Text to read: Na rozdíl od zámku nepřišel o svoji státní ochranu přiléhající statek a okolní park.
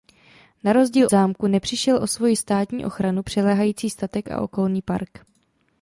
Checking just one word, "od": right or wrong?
wrong